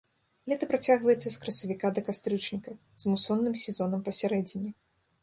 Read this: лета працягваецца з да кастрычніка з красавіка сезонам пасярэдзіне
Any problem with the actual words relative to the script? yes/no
yes